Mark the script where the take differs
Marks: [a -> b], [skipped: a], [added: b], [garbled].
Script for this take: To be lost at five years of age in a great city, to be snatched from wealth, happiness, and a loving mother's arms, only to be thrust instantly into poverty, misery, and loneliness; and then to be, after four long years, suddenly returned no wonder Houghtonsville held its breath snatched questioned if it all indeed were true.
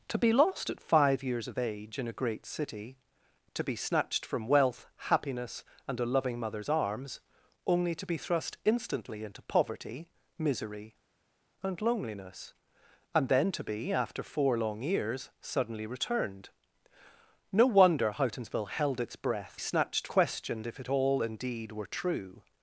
To be lost at five years of age in a great city, to be snatched from wealth, happiness, and a loving mother's arms, only to be thrust instantly into poverty, misery, and loneliness; and then to be, after four long years, suddenly returned no wonder Houghtonsville held its breath snatched questioned if it all indeed were true.